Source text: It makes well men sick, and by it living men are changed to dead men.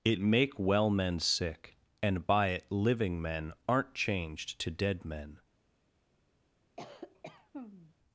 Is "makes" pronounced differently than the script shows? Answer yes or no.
yes